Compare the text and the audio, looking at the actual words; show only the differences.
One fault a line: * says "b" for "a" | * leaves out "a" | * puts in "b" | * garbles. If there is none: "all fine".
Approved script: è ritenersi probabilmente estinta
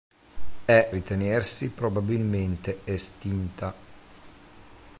all fine